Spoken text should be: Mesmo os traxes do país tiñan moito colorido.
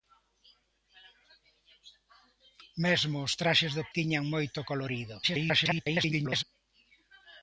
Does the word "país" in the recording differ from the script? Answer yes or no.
yes